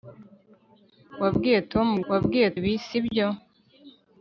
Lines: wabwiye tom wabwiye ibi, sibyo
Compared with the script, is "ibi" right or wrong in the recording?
right